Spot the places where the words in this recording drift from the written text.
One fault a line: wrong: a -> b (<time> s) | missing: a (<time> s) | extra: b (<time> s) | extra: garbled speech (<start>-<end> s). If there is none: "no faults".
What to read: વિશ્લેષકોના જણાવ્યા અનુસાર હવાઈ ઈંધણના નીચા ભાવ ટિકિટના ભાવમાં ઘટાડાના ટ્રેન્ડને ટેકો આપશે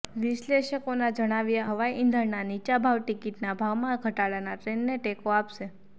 missing: અનુસાર (1.7 s)